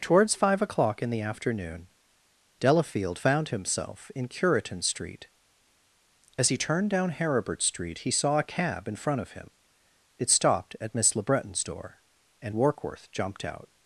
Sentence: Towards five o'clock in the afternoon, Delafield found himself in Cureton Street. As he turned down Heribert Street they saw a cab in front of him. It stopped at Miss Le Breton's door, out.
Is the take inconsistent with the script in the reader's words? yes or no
yes